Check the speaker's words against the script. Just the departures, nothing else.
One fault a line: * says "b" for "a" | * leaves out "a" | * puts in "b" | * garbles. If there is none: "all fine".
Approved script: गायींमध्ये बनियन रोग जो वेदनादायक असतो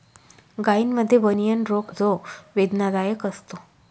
all fine